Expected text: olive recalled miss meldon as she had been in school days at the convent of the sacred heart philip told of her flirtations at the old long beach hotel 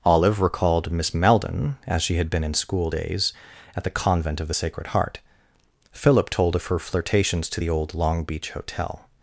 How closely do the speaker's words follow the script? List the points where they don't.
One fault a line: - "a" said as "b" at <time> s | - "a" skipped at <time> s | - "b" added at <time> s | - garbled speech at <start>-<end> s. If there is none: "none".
- "at" said as "to" at 7.5 s